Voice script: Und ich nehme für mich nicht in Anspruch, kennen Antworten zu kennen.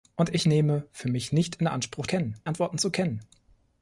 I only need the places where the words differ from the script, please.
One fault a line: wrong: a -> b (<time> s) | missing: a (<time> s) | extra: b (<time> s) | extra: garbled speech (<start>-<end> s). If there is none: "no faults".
no faults